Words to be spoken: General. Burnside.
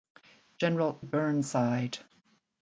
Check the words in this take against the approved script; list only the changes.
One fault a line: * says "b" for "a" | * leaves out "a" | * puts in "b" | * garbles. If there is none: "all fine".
all fine